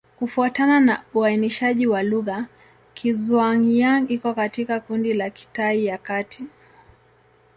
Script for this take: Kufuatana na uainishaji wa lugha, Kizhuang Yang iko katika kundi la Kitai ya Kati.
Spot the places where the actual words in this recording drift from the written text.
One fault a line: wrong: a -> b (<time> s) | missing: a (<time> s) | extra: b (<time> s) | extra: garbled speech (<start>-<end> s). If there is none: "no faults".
no faults